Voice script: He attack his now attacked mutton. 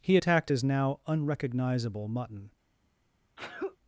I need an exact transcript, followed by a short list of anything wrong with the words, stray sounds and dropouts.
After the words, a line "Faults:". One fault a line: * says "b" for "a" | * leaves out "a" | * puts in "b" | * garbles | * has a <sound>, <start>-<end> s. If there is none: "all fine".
He attacked his now unrecognizable mutton.
Faults:
* says "attacked" for "attack"
* says "unrecognizable" for "attacked"
* has a sneeze, 3.4-3.8 s